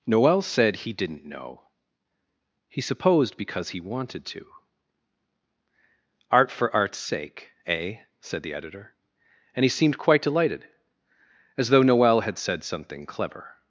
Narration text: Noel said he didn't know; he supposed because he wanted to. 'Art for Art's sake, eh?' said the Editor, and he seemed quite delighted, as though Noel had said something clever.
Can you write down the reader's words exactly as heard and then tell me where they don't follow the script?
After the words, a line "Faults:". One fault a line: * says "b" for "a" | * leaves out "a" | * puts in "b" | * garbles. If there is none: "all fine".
Noel said he didn't know; he supposed because he wanted to. 'Art for Art's sake, eh?' said the Editor, and he seemed quite delighted, as though Noel had said something clever.
Faults:
all fine